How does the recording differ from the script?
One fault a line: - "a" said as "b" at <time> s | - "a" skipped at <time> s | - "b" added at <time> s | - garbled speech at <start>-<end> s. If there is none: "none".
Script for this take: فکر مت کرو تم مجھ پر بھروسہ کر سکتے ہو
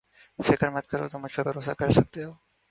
none